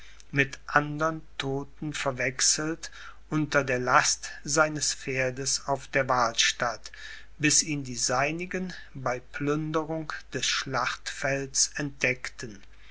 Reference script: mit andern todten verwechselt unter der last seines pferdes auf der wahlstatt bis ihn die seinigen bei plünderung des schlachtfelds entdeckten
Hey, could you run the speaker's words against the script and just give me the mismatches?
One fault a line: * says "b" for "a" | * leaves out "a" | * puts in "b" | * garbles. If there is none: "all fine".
all fine